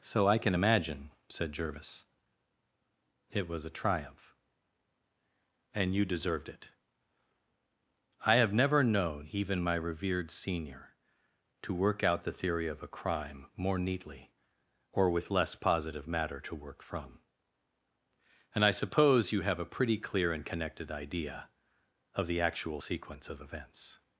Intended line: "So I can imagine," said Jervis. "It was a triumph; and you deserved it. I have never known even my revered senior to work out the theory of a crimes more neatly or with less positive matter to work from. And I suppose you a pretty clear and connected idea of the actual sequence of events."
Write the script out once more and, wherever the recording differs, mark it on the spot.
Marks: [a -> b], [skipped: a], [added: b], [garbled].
"So I can imagine," said Jervis. "It was a triumph; and you deserved it. I have never known even my revered senior to work out the theory of a [crimes -> crime] more neatly or with less positive matter to work from. And I suppose you [added: have] a pretty clear and connected idea of the actual sequence of events."